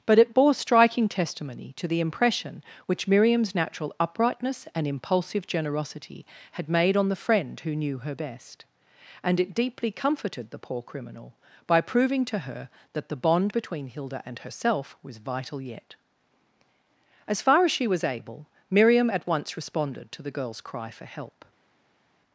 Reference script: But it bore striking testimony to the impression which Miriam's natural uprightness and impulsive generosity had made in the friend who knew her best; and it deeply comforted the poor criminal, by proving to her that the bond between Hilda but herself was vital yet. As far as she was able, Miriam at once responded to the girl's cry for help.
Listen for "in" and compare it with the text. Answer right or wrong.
wrong